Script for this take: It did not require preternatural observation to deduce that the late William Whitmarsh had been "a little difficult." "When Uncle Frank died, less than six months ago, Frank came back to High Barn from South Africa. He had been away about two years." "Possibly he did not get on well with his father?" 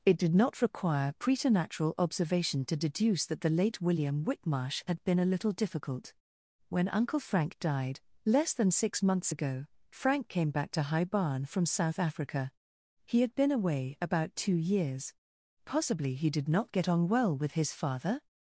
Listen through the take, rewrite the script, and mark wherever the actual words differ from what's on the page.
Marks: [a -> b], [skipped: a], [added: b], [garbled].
It did not require preternatural observation to deduce that the late William Whitmarsh had been "a little difficult." "When Uncle Frank died, less than six months ago, Frank came back to High Barn from South Africa. He had been away about two years." "Possibly he did not get on well with his father?"